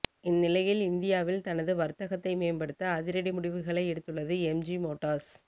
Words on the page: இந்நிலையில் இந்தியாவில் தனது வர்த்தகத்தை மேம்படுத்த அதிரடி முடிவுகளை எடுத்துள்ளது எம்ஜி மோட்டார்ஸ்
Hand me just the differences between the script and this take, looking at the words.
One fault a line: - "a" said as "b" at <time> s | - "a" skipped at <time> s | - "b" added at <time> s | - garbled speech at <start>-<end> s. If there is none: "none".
none